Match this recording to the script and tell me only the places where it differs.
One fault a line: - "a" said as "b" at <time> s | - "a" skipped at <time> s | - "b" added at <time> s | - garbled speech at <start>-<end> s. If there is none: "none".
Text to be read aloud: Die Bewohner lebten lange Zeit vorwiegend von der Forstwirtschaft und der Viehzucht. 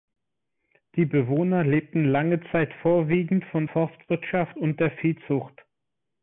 - "der" skipped at 3.7 s